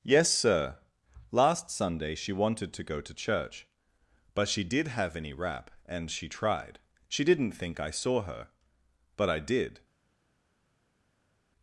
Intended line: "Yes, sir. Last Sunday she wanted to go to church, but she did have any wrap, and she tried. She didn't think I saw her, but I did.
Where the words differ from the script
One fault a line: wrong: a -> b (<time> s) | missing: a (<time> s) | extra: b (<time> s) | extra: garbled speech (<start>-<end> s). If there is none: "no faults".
no faults